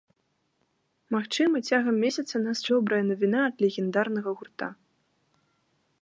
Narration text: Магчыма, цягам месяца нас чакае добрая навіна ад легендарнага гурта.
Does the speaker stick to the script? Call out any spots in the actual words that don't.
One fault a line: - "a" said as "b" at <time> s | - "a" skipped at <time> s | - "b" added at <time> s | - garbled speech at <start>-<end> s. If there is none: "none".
- "чакае" skipped at 2.6 s